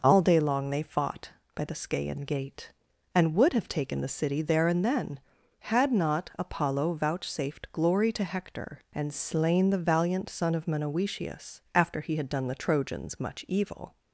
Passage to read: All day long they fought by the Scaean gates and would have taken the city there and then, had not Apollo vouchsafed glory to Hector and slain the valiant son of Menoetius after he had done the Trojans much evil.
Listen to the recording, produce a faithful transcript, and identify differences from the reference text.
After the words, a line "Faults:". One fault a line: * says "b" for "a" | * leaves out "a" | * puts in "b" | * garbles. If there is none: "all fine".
All day long they fought by the Scaean gate and would have taken the city there and then, had not Apollo vouchsafed glory to Hector and slain the valiant son of Menoetius after he had done the Trojans much evil.
Faults:
* says "gate" for "gates"